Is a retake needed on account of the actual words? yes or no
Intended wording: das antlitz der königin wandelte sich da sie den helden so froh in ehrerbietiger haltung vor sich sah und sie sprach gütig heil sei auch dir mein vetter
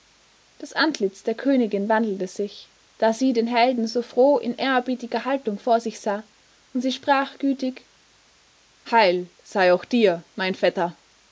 no